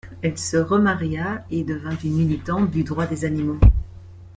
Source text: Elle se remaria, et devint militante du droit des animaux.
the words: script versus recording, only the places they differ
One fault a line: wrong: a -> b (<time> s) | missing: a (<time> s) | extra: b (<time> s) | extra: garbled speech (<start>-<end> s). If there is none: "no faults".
extra: une (2.0 s)